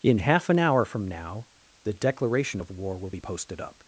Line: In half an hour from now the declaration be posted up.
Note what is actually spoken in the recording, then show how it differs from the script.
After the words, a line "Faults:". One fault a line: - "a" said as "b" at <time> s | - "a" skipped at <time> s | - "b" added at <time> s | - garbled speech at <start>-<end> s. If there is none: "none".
In half an hour from now the declaration of war will be posted up.
Faults:
- "of war will" added at 2.6 s